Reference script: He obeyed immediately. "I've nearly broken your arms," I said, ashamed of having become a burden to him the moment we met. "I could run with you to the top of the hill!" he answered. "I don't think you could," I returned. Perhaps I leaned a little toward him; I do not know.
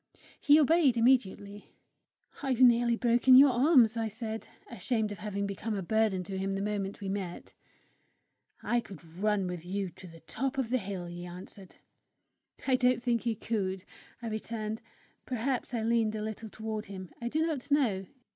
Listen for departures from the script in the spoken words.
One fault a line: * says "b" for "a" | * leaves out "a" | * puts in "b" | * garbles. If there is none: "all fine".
all fine